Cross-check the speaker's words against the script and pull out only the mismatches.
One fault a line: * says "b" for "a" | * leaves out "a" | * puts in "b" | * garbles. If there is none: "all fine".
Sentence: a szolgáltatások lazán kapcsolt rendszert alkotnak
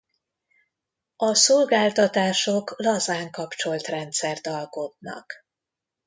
all fine